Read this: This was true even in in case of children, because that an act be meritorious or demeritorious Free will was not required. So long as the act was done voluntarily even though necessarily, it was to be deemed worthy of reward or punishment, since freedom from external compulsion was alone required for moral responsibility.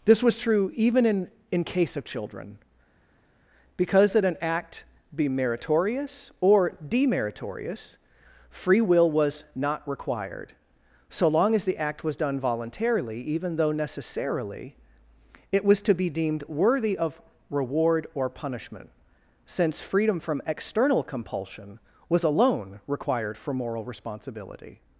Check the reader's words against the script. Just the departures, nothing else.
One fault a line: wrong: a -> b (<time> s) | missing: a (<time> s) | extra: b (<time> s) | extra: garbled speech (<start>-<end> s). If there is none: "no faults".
no faults